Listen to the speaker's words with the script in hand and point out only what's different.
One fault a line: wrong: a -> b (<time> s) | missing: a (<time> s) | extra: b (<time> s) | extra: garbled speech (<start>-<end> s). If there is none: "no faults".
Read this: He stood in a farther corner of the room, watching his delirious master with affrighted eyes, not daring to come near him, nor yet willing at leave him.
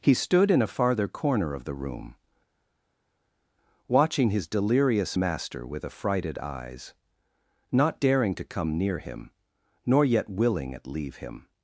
no faults